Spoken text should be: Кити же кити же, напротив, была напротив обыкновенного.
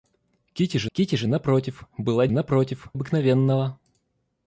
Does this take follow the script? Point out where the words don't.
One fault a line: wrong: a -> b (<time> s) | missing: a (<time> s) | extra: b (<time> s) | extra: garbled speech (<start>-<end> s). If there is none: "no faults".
no faults